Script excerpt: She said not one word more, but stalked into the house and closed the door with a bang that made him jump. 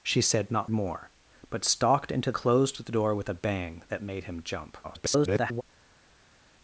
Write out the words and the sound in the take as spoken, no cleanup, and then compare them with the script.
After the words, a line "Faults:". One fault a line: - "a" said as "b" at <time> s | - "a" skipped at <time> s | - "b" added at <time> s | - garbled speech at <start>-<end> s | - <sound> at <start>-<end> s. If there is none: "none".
She said not more, but stalked into closed the door with a bang that made him jump. [garbled]
Faults:
- "one word" skipped at 0.7 s
- "the house and" skipped at 2.3 s
- garbled speech at 4.8-5.6 s